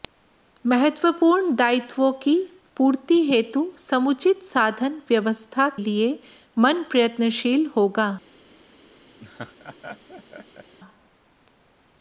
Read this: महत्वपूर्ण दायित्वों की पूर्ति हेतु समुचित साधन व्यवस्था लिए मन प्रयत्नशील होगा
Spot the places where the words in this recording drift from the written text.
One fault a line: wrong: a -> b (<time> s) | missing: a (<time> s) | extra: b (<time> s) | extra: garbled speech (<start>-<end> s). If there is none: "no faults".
no faults